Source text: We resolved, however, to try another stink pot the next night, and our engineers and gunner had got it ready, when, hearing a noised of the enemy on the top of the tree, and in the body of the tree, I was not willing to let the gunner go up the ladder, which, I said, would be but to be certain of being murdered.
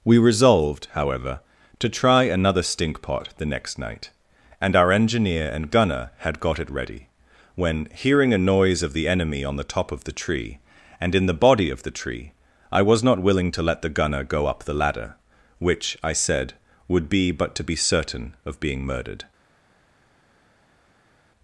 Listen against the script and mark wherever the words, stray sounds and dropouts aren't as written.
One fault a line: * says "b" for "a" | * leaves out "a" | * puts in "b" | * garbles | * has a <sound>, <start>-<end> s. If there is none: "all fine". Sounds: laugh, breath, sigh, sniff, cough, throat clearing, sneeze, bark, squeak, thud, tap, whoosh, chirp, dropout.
* says "engineer" for "engineers"
* says "noise" for "noised"